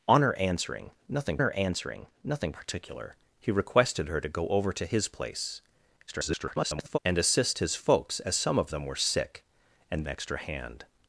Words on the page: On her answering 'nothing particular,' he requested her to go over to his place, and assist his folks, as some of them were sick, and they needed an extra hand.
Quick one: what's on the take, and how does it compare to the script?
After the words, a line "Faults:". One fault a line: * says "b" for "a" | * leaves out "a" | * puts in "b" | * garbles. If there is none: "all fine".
On her answering 'nothing her answering nothing particular,' he requested her to go over to his place, [garbled] and assist his folks, as some of them were sick, and extra hand.
Faults:
* puts in "her answering nothing"
* garbles
* leaves out "they needed an"